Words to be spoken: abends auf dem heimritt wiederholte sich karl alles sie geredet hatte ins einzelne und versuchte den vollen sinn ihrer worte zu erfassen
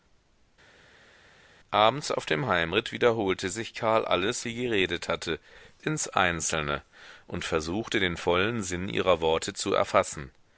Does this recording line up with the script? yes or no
yes